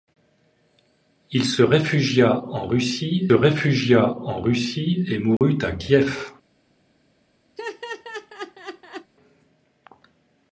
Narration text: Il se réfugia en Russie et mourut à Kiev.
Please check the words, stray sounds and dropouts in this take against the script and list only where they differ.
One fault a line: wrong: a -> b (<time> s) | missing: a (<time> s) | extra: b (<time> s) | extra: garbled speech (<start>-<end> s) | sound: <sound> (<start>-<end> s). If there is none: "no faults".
extra: réfugia en Russie (3.3 s)
sound: dropout (5.4-5.4 s)
sound: laugh (7.6-9.1 s)